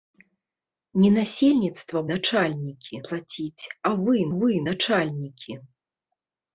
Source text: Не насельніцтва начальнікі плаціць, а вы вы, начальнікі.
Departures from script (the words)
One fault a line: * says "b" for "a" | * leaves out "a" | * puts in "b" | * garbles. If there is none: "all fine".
all fine